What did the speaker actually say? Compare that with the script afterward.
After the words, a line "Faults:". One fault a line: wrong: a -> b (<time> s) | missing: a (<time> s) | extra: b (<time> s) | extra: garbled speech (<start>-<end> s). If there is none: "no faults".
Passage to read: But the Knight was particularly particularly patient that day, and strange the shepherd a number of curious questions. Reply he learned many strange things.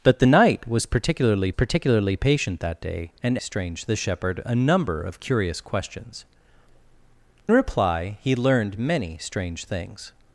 But the Knight was particularly particularly patient that day, and strange the shepherd a number of curious questions. Reply he learned many strange things.
Faults:
no faults